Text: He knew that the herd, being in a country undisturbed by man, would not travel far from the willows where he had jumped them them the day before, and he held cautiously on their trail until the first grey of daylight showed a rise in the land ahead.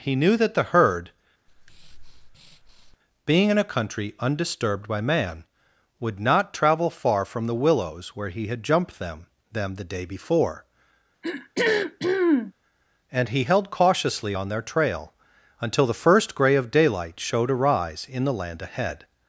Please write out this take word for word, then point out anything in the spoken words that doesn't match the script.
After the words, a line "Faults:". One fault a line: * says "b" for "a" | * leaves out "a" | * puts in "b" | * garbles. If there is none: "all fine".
He knew that the herd, being in a country undisturbed by man, would not travel far from the willows where he had jumped them them the day before, and he held cautiously on their trail until the first grey of daylight showed a rise in the land ahead.
Faults:
all fine